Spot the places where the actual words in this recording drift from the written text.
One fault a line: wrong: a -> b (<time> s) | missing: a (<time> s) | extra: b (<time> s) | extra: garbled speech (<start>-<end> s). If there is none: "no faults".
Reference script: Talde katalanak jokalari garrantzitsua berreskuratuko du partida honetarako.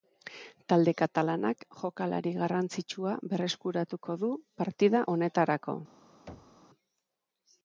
no faults